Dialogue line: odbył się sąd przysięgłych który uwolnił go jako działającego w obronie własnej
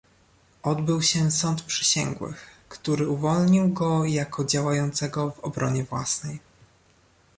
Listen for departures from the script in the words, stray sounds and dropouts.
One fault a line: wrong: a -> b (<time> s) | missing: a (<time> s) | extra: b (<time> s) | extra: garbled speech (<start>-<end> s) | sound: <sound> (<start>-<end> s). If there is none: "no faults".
no faults